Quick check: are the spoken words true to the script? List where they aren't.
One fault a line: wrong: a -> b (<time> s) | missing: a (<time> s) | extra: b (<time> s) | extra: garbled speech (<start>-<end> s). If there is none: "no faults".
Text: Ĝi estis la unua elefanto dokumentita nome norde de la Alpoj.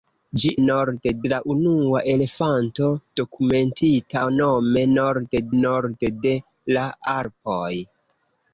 wrong: estis -> norde (0.6 s)
extra: norde (5.6 s)